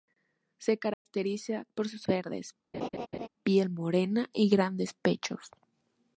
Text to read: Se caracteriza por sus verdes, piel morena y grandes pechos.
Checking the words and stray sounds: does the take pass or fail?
fail